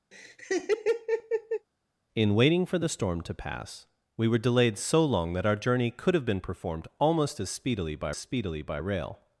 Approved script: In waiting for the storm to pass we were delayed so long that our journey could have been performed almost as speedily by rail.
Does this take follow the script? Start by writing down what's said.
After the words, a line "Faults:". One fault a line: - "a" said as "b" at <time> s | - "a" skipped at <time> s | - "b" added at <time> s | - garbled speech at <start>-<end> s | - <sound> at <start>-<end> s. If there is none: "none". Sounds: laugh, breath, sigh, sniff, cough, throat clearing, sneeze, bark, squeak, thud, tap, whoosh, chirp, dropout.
In waiting for the storm to pass we were delayed so long that our journey could have been performed almost as speedily by speedily by rail.
Faults:
- laugh at 0.1-1.7 s
- "speedily by" added at 8.2 s